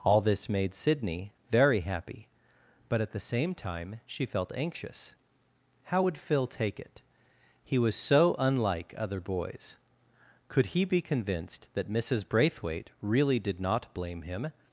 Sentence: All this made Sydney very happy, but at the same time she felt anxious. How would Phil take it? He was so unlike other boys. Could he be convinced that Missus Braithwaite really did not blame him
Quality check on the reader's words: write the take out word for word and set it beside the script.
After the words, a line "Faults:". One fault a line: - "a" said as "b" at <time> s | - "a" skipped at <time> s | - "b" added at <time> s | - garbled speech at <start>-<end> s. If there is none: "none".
All this made Sydney very happy, but at the same time she felt anxious. How would Phil take it? He was so unlike other boys. Could he be convinced that Missus Braithwaite really did not blame him
Faults:
none